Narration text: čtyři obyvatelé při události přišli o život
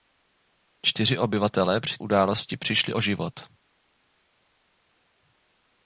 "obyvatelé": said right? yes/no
yes